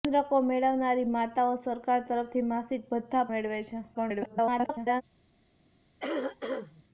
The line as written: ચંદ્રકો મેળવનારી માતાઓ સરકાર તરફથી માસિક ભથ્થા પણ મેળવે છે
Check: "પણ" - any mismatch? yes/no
yes